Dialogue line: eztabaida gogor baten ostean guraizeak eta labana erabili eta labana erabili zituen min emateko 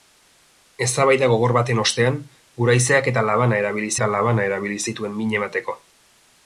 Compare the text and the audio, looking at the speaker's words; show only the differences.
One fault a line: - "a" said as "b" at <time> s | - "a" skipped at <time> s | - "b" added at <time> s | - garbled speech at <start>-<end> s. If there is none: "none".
none